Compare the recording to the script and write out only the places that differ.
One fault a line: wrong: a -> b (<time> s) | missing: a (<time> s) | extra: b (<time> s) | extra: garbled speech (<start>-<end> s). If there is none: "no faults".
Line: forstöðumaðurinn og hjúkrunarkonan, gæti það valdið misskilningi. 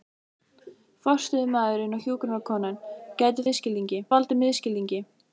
wrong: það -> misskilningi (3.5 s)